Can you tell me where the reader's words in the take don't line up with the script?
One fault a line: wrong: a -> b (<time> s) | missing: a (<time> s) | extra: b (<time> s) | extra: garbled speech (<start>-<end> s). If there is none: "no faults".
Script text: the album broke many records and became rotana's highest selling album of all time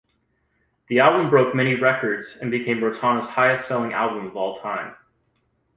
no faults